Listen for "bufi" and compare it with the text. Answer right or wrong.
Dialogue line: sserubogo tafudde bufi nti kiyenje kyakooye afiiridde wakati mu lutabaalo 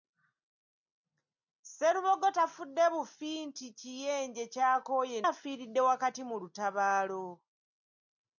right